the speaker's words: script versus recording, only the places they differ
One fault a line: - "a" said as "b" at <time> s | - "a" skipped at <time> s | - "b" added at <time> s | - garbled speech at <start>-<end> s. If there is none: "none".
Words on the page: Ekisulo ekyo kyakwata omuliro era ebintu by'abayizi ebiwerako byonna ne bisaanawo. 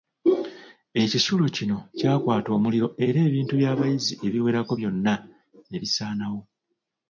- "ekyo" said as "kino" at 1.6 s